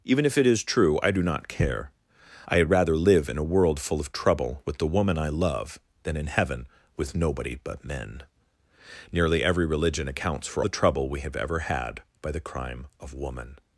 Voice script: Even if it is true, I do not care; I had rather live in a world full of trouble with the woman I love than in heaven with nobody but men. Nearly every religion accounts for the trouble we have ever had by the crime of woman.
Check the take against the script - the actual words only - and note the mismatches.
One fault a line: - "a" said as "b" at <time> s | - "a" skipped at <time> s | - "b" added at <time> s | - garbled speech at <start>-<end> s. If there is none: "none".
none